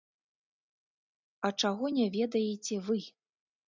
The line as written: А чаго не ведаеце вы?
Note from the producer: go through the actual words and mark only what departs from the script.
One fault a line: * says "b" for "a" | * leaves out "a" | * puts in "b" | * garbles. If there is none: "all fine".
all fine